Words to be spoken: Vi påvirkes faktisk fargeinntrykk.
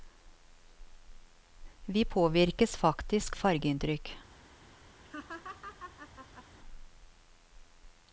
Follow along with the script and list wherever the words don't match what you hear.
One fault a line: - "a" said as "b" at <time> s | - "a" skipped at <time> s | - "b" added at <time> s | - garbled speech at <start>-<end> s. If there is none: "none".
none